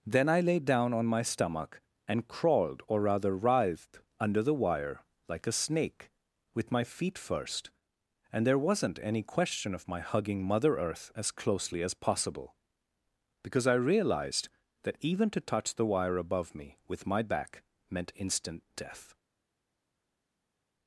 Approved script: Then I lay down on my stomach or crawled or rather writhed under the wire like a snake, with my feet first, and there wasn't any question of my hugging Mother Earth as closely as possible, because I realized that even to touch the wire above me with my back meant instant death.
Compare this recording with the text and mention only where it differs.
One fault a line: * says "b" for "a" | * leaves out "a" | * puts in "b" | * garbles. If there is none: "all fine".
* says "and" for "or"